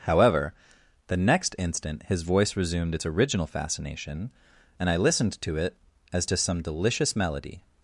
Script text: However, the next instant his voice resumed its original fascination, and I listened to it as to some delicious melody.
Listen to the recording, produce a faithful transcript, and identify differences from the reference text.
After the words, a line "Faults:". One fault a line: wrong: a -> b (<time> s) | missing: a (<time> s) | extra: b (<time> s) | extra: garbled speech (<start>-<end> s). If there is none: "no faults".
However, the next instant his voice resumed its original fascination, and I listened to it as to some delicious melody.
Faults:
no faults